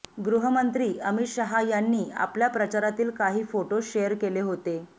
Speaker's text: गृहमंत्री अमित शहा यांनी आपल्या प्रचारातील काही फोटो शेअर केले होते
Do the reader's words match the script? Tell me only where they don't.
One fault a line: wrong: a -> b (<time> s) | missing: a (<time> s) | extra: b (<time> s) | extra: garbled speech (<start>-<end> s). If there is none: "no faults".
no faults